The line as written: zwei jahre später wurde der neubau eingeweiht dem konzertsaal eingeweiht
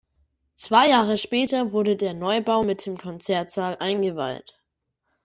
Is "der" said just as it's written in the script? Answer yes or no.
yes